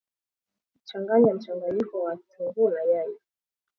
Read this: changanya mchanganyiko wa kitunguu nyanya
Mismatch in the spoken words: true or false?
true